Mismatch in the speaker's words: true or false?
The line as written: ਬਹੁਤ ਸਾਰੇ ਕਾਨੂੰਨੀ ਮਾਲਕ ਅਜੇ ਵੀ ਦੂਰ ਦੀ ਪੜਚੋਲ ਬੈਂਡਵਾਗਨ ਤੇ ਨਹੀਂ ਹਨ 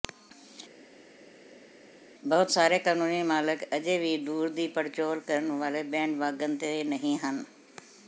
true